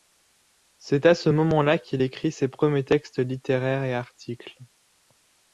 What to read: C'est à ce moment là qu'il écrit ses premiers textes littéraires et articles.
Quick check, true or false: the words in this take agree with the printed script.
true